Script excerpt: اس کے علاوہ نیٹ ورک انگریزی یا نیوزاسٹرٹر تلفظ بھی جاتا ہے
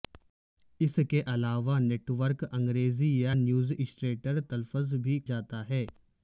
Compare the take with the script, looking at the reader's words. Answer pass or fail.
pass